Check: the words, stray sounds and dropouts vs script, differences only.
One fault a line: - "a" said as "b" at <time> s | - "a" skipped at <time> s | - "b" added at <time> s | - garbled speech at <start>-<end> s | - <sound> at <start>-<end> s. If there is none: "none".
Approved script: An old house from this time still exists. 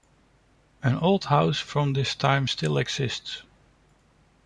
none